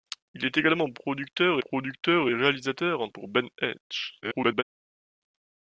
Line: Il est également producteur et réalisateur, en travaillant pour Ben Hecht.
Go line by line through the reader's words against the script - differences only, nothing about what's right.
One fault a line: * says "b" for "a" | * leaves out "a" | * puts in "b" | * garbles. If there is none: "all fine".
* puts in "producteur"
* leaves out "travaillant"
* garbles